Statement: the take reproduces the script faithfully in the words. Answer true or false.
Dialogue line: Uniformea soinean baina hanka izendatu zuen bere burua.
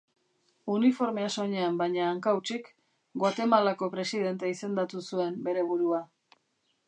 false